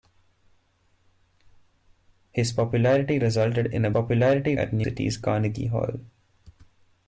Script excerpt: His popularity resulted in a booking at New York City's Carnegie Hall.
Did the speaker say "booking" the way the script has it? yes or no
no